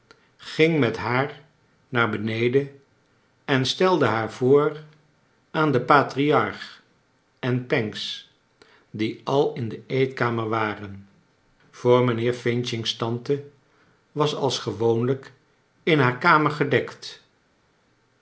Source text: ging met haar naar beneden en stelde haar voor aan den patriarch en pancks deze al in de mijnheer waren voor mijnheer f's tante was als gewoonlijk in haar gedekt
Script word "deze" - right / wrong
wrong